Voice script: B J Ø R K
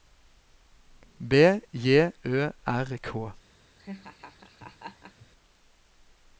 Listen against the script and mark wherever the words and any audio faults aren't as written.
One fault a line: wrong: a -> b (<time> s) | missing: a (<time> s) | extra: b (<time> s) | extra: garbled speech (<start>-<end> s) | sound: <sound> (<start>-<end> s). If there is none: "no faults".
sound: laugh (3.8-5.3 s)